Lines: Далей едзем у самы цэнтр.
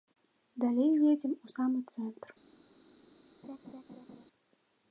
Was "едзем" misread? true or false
false